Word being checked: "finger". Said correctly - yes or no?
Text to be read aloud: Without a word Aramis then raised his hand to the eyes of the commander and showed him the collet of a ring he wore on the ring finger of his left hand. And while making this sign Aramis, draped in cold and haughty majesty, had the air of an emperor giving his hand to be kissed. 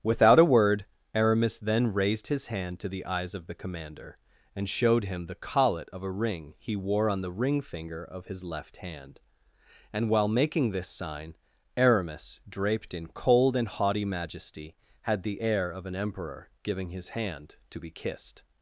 yes